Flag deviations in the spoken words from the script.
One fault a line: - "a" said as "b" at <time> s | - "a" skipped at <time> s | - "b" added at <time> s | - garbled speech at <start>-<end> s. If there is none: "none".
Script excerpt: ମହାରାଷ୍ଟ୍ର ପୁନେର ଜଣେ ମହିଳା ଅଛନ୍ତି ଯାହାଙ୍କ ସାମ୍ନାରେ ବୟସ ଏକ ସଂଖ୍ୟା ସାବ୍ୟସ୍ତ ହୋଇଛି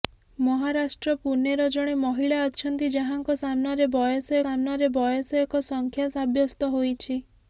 - "ସାମ୍ନାରେ ବୟସ" added at 4.4 s